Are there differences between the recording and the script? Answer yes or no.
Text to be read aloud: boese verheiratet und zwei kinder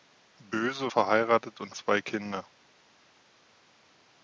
no